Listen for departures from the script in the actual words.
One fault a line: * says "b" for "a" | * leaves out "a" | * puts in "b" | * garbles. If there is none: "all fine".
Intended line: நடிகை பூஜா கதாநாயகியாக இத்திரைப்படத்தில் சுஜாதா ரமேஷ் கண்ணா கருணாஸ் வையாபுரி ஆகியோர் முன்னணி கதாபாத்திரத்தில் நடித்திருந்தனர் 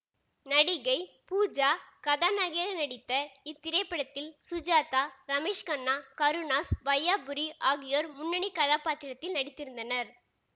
* puts in "நடித்த"